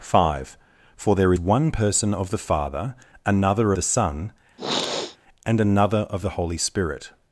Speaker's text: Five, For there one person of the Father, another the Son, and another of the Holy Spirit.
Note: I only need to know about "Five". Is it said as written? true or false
true